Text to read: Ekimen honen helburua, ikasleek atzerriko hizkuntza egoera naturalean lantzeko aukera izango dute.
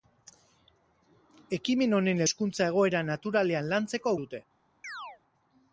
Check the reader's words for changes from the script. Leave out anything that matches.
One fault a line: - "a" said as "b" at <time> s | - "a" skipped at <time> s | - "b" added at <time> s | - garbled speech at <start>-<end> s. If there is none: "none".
- "helburua ikasleek atzerriko" skipped at 2.2 s
- "aukera izango" skipped at 4.2 s